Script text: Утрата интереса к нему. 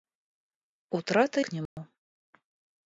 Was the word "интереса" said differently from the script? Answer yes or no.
yes